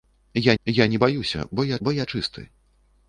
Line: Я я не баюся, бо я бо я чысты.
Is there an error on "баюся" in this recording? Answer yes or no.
no